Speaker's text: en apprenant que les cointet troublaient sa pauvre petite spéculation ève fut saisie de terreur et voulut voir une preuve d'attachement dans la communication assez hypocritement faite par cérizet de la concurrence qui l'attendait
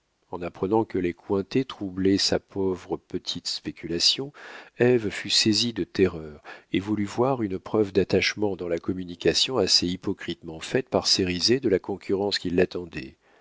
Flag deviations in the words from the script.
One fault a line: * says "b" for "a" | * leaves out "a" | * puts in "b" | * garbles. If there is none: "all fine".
all fine